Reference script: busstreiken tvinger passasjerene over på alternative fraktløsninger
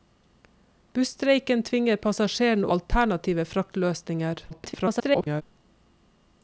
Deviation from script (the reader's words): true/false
true